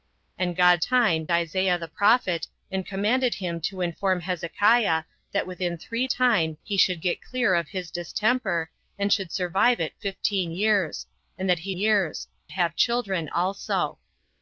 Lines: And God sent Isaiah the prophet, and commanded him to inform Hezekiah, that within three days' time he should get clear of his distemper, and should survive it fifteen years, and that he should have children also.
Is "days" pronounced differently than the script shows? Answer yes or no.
yes